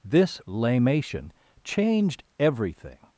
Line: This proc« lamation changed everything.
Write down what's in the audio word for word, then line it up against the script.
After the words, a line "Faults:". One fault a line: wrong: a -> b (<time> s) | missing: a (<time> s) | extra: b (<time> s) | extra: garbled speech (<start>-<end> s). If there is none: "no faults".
This« lamation changed everything.
Faults:
missing: proc (0.4 s)